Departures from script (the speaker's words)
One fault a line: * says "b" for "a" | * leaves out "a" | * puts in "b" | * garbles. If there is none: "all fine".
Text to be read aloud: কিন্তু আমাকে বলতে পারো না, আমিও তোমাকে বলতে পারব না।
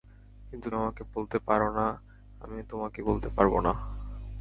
all fine